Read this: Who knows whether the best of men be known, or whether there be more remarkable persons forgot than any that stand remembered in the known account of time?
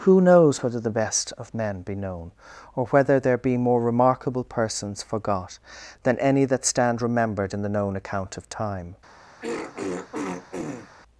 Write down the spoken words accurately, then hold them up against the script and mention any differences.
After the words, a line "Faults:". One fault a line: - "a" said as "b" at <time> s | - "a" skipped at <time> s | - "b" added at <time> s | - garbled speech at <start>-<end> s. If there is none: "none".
Who knows whether the best of men be known, or whether there be more remarkable persons forgot than any that stand remembered in the known account of time?
Faults:
none